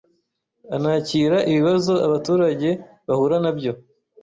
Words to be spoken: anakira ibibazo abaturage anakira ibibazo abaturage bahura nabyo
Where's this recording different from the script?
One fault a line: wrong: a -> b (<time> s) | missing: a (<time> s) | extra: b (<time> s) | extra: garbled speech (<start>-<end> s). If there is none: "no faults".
missing: anakira ibibazo abaturage (2.7 s)